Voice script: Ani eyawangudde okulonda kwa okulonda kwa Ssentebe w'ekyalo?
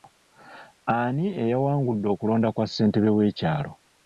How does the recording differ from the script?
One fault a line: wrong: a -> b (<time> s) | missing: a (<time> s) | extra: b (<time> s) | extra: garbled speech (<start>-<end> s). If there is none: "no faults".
missing: okulonda kwa (2.6 s)